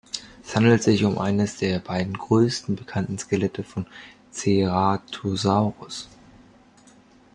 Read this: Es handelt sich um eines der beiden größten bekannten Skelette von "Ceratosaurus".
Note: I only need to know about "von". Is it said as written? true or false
true